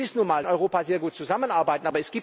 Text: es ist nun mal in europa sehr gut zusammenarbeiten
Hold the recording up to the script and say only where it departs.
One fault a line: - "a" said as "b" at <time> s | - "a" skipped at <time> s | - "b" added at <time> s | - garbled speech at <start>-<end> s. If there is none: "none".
none